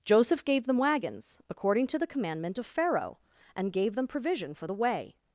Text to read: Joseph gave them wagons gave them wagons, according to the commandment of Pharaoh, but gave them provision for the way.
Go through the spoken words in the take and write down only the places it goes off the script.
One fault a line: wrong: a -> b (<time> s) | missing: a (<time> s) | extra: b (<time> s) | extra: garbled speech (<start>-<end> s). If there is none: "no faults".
missing: gave them wagons (1.4 s)
wrong: but -> and (3.6 s)